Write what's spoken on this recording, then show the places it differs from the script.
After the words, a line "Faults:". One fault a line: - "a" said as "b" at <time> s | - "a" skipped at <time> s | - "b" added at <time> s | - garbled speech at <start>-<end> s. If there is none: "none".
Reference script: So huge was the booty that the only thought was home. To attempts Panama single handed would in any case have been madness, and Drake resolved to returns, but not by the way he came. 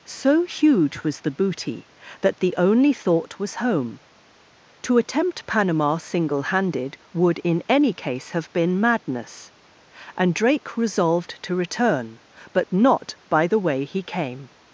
So huge was the booty that the only thought was home. To attempt Panama single handed would in any case have been madness, and Drake resolved to return, but not by the way he came.
Faults:
- "attempts" said as "attempt" at 5.0 s
- "returns" said as "return" at 11.6 s